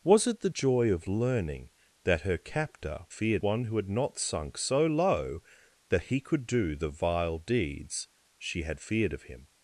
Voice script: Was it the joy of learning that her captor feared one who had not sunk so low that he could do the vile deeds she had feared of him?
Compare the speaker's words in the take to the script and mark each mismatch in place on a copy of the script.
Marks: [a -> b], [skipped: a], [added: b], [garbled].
Was it the joy of learning that her captor feared one who had not sunk so low that he could do the vile deeds she had feared of him?